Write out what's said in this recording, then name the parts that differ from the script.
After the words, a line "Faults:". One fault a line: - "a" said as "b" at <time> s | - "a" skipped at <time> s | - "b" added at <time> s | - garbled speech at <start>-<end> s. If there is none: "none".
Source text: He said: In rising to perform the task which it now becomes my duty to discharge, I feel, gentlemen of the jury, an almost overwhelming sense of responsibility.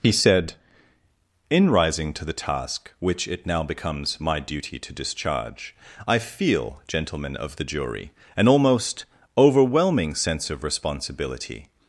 He said: In rising to the task which it now becomes my duty to discharge, I feel, gentlemen of the jury, an almost overwhelming sense of responsibility.
Faults:
- "perform" skipped at 2.2 s